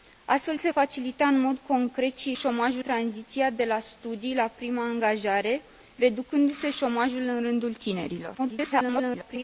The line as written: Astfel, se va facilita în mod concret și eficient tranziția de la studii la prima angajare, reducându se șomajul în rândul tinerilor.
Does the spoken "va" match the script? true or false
false